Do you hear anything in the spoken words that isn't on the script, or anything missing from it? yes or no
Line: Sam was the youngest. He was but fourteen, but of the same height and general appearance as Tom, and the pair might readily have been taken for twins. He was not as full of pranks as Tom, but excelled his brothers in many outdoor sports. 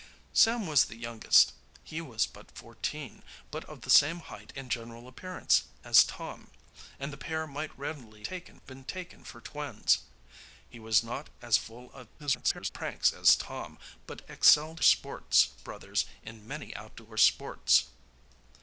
yes